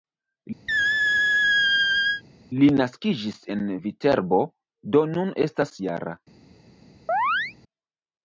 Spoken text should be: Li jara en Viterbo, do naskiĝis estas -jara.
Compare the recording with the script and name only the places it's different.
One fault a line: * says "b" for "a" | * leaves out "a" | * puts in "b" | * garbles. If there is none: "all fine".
* says "naskiĝis" for "jara"
* says "nun" for "naskiĝis"